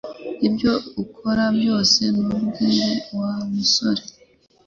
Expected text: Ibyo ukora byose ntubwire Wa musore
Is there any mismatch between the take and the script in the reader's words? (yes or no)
no